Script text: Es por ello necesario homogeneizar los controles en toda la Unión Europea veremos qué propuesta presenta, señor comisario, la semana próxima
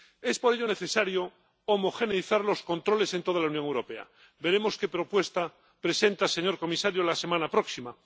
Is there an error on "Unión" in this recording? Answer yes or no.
no